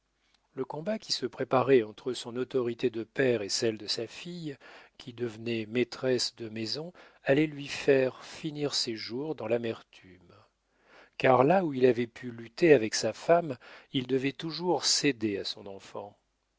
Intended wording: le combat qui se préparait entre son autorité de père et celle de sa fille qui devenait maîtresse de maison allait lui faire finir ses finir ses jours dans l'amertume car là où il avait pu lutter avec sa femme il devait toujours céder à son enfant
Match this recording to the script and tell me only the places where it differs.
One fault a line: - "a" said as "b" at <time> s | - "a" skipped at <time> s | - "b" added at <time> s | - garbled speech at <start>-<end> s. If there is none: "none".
- "finir ses" skipped at 8.9 s